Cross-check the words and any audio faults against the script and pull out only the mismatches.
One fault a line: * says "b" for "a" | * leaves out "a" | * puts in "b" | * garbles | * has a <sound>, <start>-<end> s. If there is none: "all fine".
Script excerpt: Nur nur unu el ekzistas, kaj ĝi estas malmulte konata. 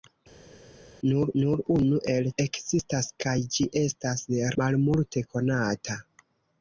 all fine